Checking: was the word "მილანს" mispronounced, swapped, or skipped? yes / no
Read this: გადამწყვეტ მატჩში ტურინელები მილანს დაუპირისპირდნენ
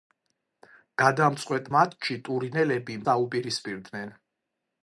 yes